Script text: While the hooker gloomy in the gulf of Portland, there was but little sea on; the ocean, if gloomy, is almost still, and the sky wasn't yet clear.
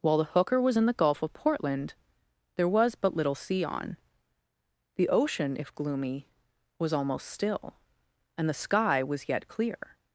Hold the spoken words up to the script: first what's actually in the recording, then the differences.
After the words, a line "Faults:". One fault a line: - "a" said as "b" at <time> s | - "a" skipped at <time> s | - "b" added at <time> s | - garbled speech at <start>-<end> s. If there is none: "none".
While the hooker was in the gulf of Portland, there was but little sea on; the ocean, if gloomy, was almost still, and the sky was yet clear.
Faults:
- "gloomy" said as "was" at 0.6 s
- "is" said as "was" at 6.8 s
- "wasn't" said as "was" at 9.0 s